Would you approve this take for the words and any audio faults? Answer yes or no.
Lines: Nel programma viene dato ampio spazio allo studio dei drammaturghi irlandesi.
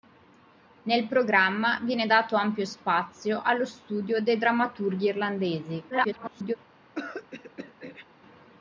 no